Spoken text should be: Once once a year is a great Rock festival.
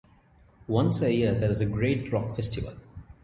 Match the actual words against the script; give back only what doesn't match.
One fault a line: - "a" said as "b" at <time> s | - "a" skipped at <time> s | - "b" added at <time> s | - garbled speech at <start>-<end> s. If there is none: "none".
- "once" skipped at 1.0 s
- "there" added at 1.4 s